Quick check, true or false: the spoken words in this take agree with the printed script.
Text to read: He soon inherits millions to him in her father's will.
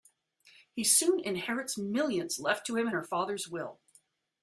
false